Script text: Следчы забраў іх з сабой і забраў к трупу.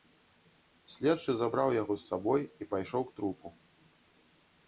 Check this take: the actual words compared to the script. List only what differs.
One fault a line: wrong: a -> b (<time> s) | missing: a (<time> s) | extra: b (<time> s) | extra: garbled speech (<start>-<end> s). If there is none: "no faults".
wrong: іх -> яго (1.8 s)
wrong: забраў -> пайшоў (2.7 s)